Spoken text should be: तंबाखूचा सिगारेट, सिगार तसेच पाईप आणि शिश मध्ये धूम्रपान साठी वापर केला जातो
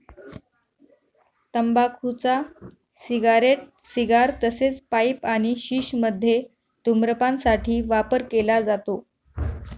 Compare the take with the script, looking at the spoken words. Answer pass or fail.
pass